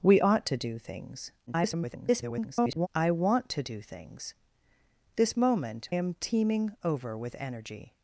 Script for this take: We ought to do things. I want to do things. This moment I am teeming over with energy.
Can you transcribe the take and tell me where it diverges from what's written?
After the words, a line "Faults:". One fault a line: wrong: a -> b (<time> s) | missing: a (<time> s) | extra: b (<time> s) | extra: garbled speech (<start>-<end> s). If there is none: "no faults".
We ought to do things. [garbled] I want to do things. This moment am teeming over with energy.
Faults:
extra: garbled speech (1.5-2.9 s)
missing: I (5.9 s)